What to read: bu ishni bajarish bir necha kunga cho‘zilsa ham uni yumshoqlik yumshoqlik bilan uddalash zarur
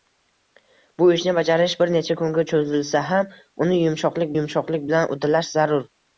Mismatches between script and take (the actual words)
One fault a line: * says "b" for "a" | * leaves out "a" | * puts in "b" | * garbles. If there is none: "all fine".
all fine